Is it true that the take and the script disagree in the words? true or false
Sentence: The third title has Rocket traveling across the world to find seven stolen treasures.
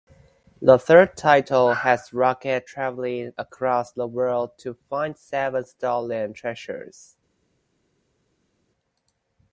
false